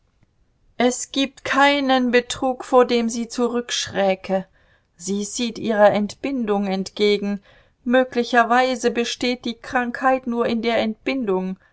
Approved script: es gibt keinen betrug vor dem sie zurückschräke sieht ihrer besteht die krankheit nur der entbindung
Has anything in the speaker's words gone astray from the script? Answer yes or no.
yes